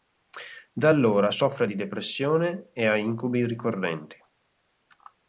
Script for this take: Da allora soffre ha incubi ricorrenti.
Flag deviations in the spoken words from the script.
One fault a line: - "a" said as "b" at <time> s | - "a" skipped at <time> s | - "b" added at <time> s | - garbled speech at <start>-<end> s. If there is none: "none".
- "di depressione e" added at 1.6 s